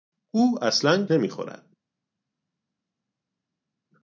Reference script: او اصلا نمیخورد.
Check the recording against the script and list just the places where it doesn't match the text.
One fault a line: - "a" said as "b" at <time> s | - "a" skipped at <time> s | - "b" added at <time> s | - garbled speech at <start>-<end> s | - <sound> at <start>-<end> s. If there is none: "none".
none